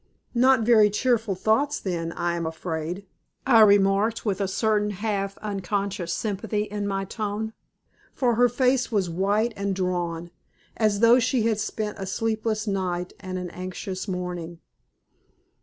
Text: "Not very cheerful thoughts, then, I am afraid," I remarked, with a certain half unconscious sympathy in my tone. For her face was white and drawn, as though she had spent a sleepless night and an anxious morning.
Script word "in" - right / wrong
right